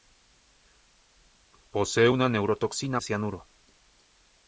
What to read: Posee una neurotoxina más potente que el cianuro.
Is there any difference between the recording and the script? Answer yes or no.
yes